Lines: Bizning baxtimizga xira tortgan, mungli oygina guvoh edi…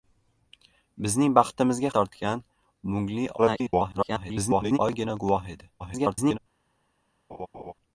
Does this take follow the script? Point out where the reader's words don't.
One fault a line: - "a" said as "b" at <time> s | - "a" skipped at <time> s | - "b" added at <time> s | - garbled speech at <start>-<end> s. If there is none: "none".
- "xira" skipped at 1.9 s
- garbled speech at 3.4-4.8 s
- garbled speech at 5.8-6.4 s